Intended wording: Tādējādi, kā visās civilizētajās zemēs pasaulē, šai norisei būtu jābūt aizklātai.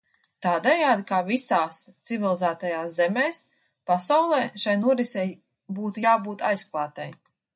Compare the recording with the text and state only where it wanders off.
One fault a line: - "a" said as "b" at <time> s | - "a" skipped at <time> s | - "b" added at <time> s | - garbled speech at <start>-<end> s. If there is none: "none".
none